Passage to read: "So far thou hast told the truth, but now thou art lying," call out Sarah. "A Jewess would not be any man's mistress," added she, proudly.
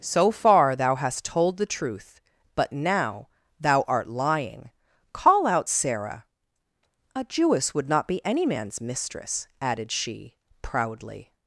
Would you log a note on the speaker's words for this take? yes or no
no